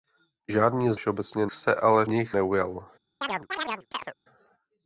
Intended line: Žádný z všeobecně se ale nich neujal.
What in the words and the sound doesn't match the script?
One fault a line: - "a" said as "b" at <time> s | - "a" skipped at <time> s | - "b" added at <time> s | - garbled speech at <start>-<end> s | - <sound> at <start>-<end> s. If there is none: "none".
- chirp at 3.2-4.1 s